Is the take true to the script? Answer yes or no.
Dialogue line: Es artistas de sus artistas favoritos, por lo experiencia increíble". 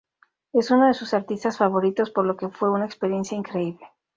no